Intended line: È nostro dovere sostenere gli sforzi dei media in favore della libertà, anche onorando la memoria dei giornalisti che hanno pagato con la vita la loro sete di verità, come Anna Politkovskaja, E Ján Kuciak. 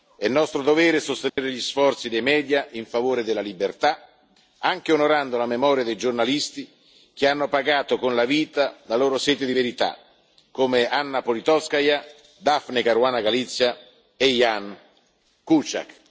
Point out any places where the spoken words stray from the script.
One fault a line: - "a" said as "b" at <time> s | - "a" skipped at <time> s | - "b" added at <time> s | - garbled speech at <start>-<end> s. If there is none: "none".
- "Daphne Caruana Galizia" added at 12.4 s